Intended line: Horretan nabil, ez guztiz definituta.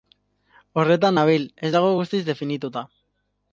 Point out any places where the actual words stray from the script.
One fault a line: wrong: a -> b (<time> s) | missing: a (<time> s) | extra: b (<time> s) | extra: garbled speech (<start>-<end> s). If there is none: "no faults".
extra: dago (1.8 s)